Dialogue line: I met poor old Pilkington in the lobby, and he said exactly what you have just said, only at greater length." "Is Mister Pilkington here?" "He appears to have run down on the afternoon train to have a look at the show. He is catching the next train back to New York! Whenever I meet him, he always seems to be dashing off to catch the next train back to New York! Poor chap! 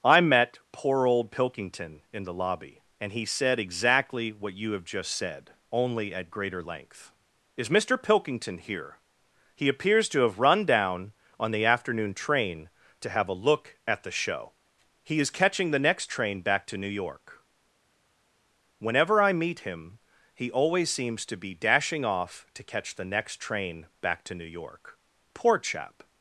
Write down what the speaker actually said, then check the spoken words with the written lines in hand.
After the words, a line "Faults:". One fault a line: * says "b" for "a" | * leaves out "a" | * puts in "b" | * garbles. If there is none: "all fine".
I met poor old Pilkington in the lobby, and he said exactly what you have just said, only at greater length." "Is Mister Pilkington here?" "He appears to have run down on the afternoon train to have a look at the show. He is catching the next train back to New York! Whenever I meet him, he always seems to be dashing off to catch the next train back to New York! Poor chap!
Faults:
all fine